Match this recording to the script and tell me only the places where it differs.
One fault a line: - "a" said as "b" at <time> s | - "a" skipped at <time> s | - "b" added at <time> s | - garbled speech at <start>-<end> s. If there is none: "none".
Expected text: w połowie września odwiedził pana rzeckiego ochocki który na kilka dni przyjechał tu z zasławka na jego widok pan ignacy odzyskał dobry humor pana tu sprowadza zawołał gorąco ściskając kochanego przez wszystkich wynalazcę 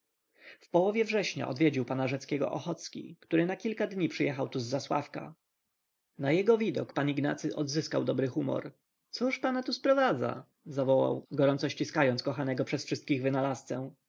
- "cóż" added at 9.1 s